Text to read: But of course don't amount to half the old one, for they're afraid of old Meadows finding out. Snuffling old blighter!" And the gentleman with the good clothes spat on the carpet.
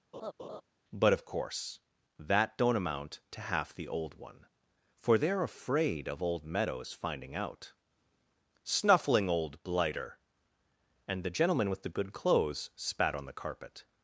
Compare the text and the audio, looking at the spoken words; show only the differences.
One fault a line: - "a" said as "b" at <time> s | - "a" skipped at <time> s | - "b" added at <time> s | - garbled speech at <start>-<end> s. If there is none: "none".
- "that" added at 2.2 s